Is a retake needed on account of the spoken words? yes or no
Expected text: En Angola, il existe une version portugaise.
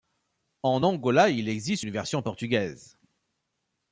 no